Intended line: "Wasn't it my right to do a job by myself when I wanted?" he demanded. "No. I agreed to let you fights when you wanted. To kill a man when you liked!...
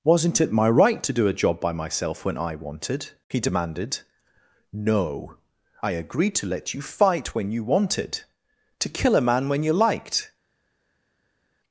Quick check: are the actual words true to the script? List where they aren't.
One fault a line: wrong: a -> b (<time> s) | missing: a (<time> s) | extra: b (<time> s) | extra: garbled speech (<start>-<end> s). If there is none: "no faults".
wrong: fights -> fight (6.8 s)